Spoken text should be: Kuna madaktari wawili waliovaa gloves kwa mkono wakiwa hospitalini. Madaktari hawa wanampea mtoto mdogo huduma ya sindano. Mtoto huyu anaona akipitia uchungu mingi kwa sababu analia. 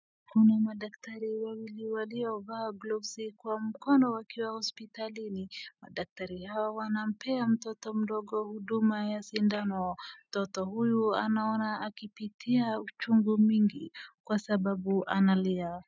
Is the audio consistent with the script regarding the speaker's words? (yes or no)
yes